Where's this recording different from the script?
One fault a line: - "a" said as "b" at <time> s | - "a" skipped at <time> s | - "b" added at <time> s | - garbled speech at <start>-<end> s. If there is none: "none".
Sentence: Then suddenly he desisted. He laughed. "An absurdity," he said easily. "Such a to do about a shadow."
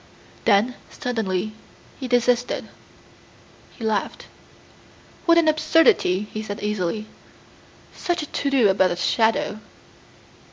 - "What" added at 5.3 s